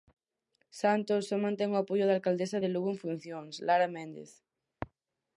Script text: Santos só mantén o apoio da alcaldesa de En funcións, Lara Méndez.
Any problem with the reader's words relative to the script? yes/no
yes